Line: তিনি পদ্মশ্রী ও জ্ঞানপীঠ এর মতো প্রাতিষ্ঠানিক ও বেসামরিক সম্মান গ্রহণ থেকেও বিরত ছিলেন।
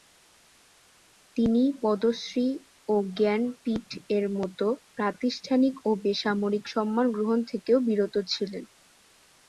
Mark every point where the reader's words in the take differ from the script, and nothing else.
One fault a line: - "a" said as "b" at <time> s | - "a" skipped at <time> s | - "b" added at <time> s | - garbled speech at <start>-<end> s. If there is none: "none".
none